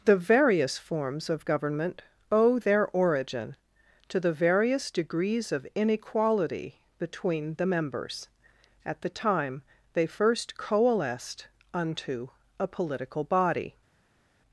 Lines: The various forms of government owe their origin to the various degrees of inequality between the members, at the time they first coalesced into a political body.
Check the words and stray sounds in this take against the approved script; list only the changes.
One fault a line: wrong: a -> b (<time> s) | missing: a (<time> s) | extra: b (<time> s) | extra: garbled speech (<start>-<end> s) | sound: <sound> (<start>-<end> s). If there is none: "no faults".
wrong: into -> unto (11.7 s)